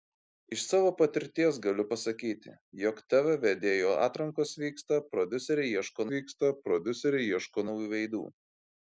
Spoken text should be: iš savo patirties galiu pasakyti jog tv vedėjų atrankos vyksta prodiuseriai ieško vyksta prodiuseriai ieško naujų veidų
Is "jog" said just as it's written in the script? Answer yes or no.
yes